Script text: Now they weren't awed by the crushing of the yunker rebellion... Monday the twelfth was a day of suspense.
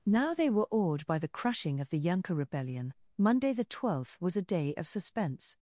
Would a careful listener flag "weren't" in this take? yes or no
yes